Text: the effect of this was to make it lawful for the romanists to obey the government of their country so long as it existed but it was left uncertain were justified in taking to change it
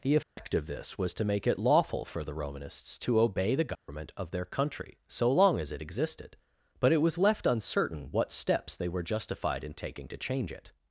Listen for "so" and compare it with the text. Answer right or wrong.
right